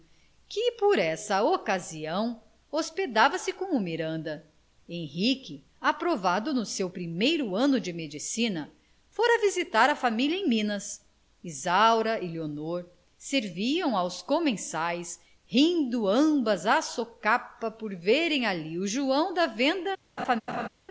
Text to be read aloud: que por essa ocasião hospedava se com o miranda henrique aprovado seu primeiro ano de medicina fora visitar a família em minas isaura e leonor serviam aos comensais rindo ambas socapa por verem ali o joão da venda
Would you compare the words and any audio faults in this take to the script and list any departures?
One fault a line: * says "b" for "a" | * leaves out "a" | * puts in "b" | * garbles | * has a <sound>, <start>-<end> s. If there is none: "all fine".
* puts in "no"
* puts in "à"
* has a laugh, 20.2-20.7 s